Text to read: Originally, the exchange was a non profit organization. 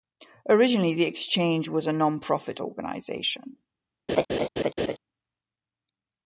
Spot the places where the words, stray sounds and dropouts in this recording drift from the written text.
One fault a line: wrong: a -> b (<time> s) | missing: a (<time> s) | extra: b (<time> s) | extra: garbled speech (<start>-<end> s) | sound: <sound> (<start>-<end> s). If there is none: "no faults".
sound: laugh (4.1-5.0 s)